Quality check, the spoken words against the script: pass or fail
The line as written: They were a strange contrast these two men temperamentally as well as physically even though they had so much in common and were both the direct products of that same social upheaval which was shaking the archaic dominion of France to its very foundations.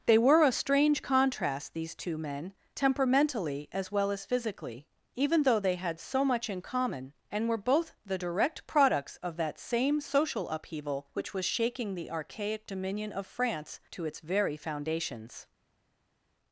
pass